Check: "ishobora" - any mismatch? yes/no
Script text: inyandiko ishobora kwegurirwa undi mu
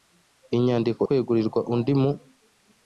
yes